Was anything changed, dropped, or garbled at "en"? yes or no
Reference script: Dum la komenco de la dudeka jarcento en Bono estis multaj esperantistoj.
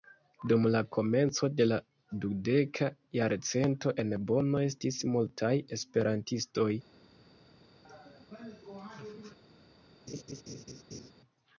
no